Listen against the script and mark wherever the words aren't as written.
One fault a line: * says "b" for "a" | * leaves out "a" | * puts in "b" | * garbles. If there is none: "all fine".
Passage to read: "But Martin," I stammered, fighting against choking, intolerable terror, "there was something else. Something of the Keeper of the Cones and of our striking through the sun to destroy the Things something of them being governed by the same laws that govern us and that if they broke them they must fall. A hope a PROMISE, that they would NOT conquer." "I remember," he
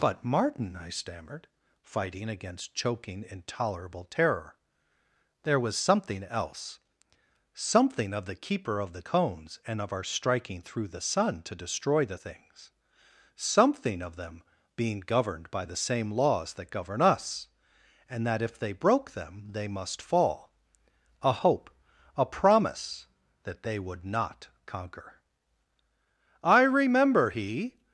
all fine